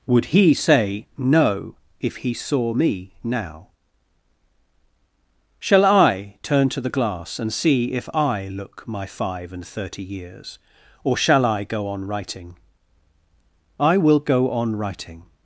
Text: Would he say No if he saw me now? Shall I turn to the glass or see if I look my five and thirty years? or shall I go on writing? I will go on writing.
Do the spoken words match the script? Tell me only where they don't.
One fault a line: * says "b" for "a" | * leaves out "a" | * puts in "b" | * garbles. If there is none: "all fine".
* says "and" for "or"